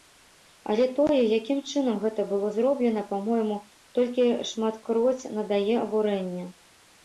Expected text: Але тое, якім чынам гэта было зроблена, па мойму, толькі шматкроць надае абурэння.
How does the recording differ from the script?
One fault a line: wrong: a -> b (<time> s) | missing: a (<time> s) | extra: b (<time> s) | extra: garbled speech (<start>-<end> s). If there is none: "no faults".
no faults